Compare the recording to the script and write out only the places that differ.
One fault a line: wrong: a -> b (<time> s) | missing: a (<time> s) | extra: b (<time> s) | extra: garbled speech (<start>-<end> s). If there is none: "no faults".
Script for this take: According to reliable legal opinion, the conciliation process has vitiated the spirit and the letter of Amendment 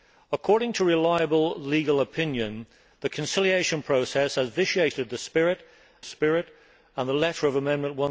extra: spirit (6.0 s)